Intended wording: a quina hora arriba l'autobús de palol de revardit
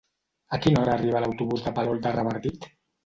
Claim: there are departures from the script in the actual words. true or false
false